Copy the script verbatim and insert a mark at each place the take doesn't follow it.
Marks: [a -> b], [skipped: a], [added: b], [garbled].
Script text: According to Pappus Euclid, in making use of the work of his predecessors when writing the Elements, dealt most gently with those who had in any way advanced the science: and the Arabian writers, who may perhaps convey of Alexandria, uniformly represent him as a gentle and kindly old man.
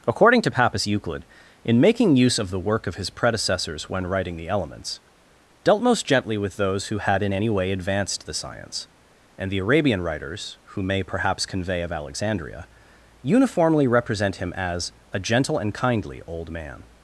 According to Pappus Euclid, in making use of the work of his predecessors when writing the Elements, dealt most gently with those who had in any way advanced the science: and the Arabian writers, who may perhaps convey of Alexandria, uniformly represent him as a gentle and kindly old man.